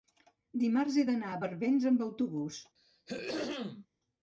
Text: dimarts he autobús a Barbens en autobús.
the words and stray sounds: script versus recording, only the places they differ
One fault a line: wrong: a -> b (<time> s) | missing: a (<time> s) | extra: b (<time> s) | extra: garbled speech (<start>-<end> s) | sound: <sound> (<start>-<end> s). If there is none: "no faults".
wrong: autobús -> d'anar (1.1 s)
wrong: en -> amb (1.9 s)
sound: throat clearing (2.8-3.9 s)